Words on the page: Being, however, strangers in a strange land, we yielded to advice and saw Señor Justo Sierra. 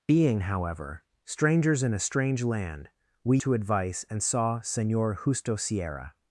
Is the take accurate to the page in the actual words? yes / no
no